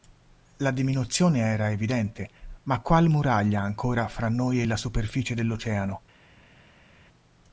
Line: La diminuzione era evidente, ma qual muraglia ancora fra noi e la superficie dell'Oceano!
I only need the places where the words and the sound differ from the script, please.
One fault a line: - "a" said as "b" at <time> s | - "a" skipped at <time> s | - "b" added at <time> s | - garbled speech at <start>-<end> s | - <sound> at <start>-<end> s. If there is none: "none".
none